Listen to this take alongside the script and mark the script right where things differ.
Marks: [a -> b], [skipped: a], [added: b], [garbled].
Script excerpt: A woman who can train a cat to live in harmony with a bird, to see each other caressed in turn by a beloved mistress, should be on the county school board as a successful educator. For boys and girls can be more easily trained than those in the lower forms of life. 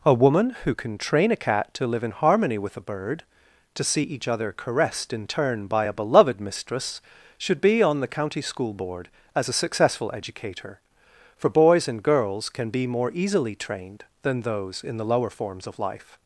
A woman who can train a cat to live in harmony with a bird, to see each other caressed in turn by a beloved mistress, should be on the county school board as a successful educator. For boys and girls can be more easily trained than those in the lower forms of life.